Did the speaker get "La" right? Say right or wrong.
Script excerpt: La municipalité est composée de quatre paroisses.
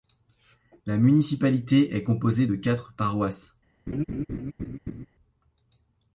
right